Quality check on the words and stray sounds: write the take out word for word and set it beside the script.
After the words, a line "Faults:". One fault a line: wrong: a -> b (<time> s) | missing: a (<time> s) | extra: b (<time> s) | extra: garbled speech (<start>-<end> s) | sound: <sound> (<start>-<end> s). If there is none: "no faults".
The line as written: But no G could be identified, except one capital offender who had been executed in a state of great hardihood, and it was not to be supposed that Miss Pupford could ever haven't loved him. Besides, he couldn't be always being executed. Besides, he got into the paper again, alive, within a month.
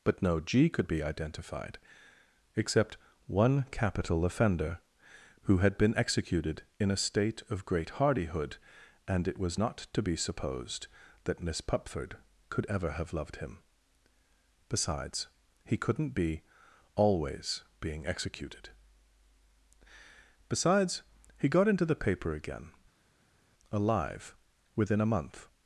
But no G could be identified, except one capital offender who had been executed in a state of great hardihood, and it was not to be supposed that Miss Pupford could ever have loved him. Besides, he couldn't be always being executed. Besides, he got into the paper again, alive, within a month.
Faults:
wrong: haven't -> have (12.9 s)